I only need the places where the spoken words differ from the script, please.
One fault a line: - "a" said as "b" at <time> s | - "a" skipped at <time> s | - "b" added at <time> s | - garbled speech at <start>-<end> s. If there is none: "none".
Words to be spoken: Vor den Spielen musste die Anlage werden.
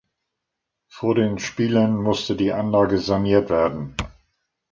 - "saniert" added at 3.0 s